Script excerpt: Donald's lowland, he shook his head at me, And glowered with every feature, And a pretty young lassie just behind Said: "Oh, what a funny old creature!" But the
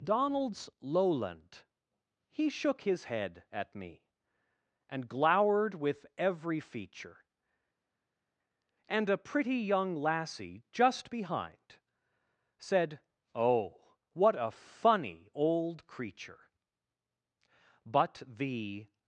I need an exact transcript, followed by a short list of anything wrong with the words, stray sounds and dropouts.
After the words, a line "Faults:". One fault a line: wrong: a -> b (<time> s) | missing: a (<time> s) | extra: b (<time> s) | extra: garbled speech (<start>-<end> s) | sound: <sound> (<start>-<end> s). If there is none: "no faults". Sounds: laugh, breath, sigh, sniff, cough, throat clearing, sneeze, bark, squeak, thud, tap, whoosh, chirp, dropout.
Donald's lowland, he shook his head at me, And glowered with every feature, And a pretty young lassie just behind Said: "Oh, what a funny old creature!" But the
Faults:
no faults